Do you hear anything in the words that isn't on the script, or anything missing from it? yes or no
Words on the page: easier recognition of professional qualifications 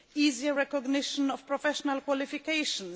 no